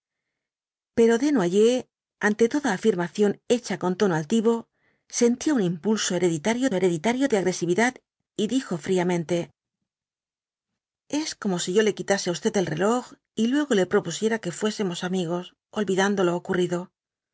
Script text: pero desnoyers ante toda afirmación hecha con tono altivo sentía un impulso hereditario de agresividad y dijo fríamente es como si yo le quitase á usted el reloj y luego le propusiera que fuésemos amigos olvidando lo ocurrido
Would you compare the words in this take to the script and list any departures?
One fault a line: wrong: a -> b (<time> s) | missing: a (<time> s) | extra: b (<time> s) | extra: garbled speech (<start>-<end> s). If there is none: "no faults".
extra: hereditario (6.8 s)